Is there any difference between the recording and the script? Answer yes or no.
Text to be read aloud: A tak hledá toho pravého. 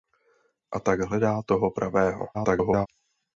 yes